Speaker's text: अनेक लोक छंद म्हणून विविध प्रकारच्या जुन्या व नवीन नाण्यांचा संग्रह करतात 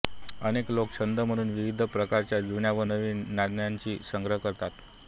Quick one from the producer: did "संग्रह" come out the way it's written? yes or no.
yes